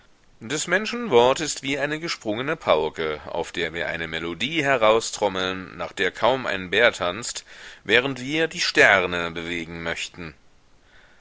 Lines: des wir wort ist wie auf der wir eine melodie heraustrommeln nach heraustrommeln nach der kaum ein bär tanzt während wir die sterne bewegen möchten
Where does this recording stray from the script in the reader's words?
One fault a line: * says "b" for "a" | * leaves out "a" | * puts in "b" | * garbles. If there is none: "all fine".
* says "menschen" for "wir"
* puts in "eine gesprungene pauke"
* leaves out "heraustrommeln nach"